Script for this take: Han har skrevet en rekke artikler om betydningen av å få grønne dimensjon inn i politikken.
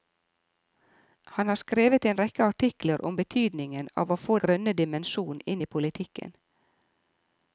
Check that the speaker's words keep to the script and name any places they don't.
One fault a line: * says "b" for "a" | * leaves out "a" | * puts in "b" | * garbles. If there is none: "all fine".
all fine